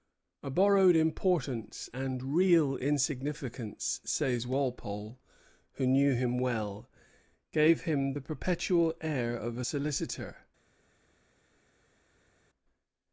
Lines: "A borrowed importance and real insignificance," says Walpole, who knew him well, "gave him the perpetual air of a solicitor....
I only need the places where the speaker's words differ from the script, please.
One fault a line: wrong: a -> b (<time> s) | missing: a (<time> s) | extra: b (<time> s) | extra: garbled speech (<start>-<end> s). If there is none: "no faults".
no faults